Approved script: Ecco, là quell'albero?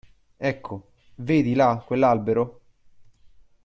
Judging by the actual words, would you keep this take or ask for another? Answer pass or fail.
fail